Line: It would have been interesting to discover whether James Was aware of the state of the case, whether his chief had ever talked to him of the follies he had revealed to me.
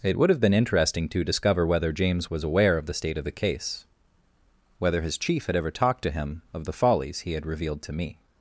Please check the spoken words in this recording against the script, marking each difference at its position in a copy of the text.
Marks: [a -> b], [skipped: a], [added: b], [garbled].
It would have been interesting to discover whether James Was aware of the state of the case, whether his chief had ever talked to him of the follies he had revealed to me.